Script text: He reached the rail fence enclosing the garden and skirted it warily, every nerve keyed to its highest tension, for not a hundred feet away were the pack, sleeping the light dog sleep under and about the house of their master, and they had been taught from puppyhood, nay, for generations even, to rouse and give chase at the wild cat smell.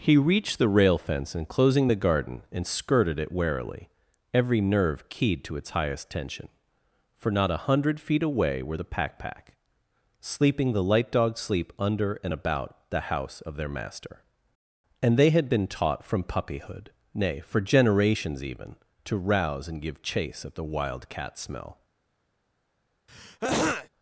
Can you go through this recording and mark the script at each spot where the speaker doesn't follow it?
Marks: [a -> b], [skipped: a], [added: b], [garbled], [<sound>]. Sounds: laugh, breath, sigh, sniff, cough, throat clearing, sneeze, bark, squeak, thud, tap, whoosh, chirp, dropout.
He reached the rail fence enclosing the garden and skirted it warily, every nerve keyed to its highest tension, for not a hundred feet away were the pack, [added: pack] sleeping the light dog sleep under and about the house of their master, and they had been taught from puppyhood, nay, for generations even, to rouse and give chase at the wild cat smell. [throat clearing]